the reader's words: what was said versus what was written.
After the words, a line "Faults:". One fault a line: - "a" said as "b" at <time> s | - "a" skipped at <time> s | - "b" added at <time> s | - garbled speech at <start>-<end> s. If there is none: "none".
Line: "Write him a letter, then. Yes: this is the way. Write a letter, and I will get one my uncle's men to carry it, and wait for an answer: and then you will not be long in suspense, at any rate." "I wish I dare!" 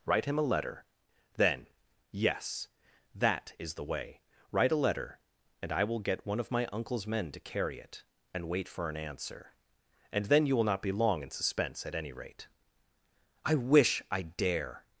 "Write him a letter, then. Yes: that is the way. Write a letter, and I will get one of my uncle's men to carry it, and wait for an answer: and then you will not be long in suspense, at any rate." "I wish I dare!"
Faults:
- "this" said as "that" at 3.1 s
- "of" added at 6.4 s